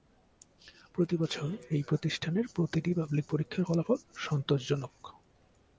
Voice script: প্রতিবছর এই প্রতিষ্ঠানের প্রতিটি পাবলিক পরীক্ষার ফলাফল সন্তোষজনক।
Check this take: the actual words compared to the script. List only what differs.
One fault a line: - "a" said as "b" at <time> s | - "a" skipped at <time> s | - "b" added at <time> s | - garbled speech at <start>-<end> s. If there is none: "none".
none